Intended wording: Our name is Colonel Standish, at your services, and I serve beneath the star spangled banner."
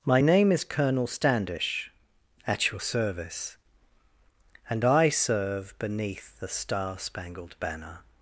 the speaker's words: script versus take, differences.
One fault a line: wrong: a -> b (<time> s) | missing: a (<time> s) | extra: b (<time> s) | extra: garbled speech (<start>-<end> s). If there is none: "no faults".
wrong: Our -> My (0.0 s)
wrong: services -> service (2.8 s)